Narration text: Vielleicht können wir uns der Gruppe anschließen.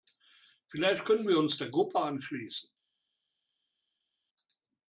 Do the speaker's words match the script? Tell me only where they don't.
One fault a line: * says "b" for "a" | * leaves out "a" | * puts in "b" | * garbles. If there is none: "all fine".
all fine